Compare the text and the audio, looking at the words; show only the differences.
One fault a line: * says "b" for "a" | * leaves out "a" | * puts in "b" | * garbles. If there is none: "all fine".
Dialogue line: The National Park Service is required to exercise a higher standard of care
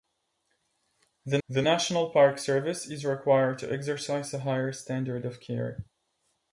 * puts in "the"